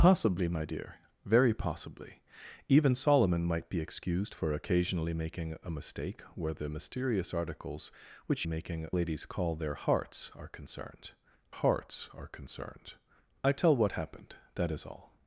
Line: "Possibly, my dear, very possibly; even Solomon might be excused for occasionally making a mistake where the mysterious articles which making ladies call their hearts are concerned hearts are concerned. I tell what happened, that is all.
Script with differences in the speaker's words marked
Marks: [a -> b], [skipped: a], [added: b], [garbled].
"Possibly, my dear, very possibly; even Solomon might be excused for occasionally making a mistake where the mysterious articles which making ladies call their hearts are concerned hearts are concerned. I tell what happened, that is all.